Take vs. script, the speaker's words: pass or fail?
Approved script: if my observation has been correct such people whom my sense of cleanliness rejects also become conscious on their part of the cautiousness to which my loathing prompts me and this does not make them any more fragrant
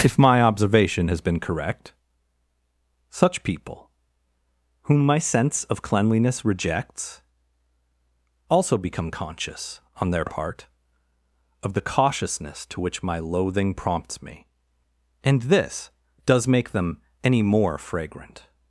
fail